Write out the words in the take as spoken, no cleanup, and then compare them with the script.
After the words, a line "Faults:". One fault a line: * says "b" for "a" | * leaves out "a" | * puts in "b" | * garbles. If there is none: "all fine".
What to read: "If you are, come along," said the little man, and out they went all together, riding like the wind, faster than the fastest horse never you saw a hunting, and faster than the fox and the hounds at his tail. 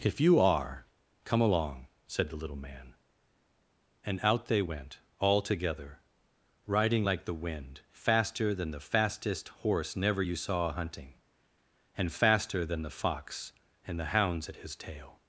"If you are, come along," said the little man, and out they went all together, riding like the wind, faster than the fastest horse never you saw a hunting, and faster than the fox and the hounds at his tail.
Faults:
all fine